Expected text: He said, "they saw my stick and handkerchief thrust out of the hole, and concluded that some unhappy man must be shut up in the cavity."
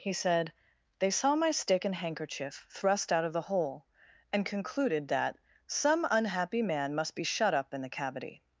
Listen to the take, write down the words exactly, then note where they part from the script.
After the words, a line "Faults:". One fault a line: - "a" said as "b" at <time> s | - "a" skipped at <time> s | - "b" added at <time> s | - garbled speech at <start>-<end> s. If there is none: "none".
He said, "they saw my stick and handkerchief thrust out of the hole, and concluded that some unhappy man must be shut up in the cavity."
Faults:
none